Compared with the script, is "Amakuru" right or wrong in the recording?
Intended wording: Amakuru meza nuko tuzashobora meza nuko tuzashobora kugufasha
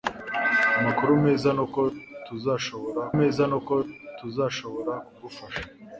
right